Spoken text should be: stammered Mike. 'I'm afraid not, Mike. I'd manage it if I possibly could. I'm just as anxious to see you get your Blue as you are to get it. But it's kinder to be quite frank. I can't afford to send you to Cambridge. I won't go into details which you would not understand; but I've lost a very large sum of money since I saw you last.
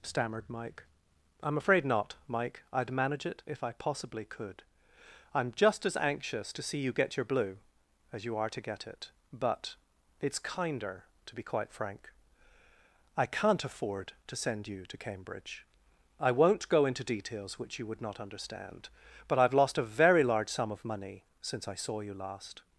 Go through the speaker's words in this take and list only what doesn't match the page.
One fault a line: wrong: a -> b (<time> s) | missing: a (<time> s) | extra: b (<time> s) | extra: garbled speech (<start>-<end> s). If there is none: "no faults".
no faults